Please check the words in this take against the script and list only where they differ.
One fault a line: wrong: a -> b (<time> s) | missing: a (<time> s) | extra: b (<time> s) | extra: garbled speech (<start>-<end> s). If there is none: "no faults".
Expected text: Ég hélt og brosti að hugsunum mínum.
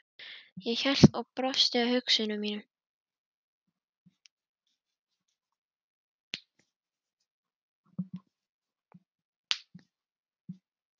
no faults